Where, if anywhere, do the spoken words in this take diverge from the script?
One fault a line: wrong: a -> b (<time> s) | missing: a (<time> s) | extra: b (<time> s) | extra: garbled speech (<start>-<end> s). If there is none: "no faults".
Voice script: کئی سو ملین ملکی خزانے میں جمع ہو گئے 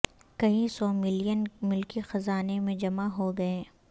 no faults